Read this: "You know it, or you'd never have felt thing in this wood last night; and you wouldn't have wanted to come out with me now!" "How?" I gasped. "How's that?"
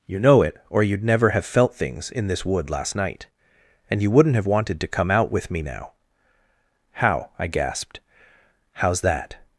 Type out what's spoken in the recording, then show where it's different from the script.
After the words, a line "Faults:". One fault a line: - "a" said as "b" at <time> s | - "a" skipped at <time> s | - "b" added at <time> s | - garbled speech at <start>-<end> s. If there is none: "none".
"You know it, or you'd never have felt things in this wood last night; and you wouldn't have wanted to come out with me now!" "How?" I gasped. "How's that?"
Faults:
- "thing" said as "things" at 1.8 s